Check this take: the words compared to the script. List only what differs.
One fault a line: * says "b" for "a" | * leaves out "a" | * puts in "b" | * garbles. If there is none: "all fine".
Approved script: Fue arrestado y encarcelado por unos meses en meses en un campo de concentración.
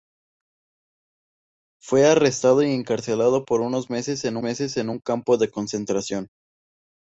all fine